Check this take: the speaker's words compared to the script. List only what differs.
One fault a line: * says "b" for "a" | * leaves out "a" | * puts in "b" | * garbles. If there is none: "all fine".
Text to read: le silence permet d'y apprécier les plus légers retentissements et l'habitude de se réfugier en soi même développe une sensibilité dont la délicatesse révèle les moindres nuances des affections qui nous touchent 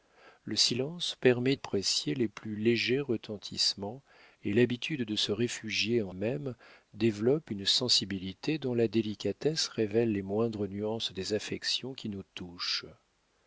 * leaves out "d'y"
* leaves out "soi"